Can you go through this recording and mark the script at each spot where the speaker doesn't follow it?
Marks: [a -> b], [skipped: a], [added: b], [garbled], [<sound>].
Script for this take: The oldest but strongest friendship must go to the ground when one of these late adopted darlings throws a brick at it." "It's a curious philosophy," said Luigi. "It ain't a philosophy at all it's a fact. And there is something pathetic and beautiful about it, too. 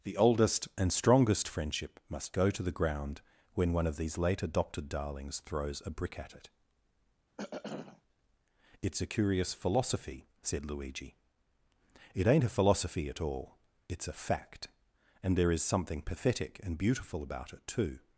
The oldest [but -> and] strongest friendship must go to the ground when one of these late adopted darlings throws a brick at it." [throat clearing] "It's a curious philosophy," said Luigi. "It ain't a philosophy at all it's a fact. And there is something pathetic and beautiful about it, too.